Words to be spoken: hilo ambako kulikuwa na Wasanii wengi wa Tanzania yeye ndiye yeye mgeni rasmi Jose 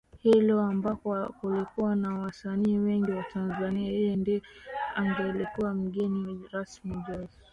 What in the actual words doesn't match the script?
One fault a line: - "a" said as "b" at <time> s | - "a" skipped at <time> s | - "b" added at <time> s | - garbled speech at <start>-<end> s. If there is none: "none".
- "yeye" said as "angelikuwa" at 4.9 s